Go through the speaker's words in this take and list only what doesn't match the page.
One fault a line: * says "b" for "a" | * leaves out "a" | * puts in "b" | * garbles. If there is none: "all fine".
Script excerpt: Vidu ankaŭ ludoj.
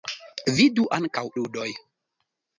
all fine